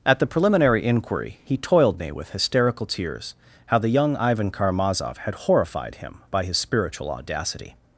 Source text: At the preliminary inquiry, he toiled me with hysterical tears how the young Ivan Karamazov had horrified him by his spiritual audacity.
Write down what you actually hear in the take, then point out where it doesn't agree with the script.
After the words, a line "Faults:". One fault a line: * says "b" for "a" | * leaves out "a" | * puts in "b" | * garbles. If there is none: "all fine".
At the preliminary inquiry, he toiled me with hysterical tears how the young Ivan Karamazov had horrified him by his spiritual audacity.
Faults:
all fine